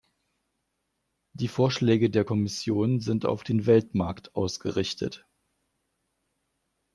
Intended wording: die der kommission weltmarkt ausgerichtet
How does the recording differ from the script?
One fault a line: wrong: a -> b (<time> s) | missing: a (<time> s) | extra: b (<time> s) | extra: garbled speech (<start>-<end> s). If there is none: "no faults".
extra: vorschläge (1.5 s)
extra: sind auf den (3.0 s)